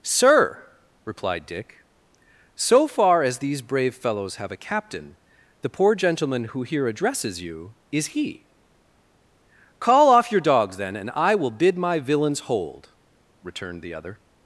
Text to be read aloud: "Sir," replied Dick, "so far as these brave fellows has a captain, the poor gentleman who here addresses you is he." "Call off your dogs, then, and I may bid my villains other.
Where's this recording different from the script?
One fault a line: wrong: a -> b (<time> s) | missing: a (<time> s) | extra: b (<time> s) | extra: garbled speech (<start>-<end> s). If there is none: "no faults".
wrong: has -> have (4.3 s)
wrong: may -> will (11.3 s)
extra: hold returned the (12.4 s)